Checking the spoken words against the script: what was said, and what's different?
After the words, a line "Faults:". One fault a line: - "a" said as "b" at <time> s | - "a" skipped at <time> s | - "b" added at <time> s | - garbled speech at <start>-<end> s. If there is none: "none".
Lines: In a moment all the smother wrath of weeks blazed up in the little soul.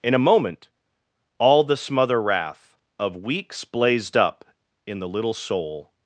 In a moment all the smother wrath of weeks blazed up in the little soul.
Faults:
none